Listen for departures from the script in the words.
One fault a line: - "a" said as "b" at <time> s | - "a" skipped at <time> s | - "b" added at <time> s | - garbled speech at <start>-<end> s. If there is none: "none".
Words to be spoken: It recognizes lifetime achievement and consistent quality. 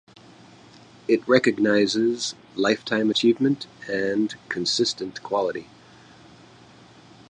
none